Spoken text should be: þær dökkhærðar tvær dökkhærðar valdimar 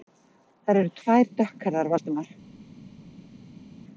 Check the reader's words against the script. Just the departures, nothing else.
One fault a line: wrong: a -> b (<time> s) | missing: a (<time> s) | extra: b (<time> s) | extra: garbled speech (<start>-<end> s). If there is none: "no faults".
wrong: dökkhærðar -> eru (0.8 s)